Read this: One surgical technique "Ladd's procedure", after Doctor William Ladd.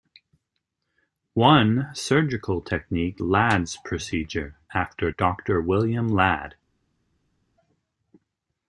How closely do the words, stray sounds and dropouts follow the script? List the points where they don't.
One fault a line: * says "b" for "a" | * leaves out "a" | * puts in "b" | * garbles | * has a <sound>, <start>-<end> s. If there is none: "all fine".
all fine